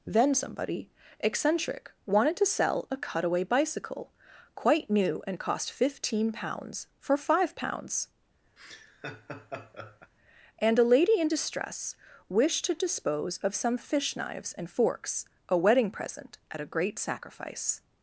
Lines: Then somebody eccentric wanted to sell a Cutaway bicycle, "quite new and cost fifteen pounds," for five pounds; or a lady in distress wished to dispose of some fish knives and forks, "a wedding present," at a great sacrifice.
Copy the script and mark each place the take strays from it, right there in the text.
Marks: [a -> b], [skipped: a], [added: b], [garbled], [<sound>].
Then somebody eccentric wanted to sell a Cutaway bicycle, "quite new and cost fifteen pounds," for five pounds; [laugh] [or -> and] a lady in distress wished to dispose of some fish knives and forks, "a wedding present," at a great sacrifice.